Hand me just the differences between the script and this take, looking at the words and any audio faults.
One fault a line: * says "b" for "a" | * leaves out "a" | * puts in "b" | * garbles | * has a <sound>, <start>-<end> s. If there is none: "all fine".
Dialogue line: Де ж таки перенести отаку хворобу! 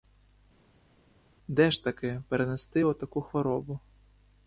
all fine